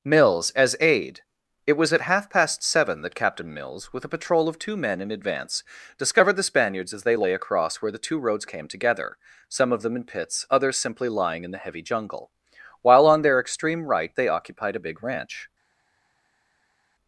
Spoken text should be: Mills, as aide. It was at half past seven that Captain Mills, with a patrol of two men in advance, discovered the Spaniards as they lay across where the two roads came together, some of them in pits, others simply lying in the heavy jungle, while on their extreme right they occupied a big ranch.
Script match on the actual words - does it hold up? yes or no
yes